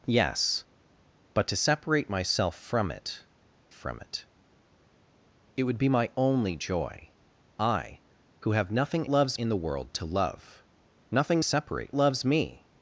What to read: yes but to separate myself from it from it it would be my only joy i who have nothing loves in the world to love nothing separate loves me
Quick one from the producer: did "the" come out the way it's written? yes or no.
yes